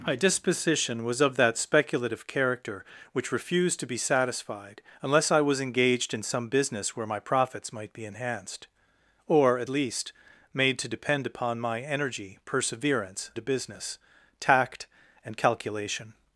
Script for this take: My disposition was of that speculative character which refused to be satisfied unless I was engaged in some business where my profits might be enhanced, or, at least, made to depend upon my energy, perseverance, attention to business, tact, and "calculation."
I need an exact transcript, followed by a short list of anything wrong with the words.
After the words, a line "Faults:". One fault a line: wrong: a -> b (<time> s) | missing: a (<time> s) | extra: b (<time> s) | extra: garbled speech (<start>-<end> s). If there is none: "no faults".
My disposition was of that speculative character which refused to be satisfied unless I was engaged in some business where my profits might be enhanced, or, at least, made to depend upon my energy, perseverance, to business, tact, and "calculation."
Faults:
missing: attention (13.3 s)